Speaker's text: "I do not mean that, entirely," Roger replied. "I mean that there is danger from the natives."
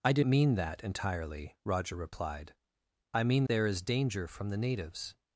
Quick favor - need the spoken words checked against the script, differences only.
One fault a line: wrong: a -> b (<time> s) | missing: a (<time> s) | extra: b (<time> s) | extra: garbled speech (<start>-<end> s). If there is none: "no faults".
missing: not (0.2 s)
missing: that (3.4 s)